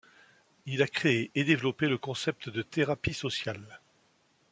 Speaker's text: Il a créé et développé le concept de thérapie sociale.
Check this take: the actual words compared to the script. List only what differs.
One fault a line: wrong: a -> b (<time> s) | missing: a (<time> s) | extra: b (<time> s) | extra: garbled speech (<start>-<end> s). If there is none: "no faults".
no faults